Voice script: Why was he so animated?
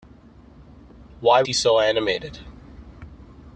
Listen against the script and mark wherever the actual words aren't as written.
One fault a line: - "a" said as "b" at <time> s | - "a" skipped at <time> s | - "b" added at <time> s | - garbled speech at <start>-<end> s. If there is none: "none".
- "was" skipped at 1.4 s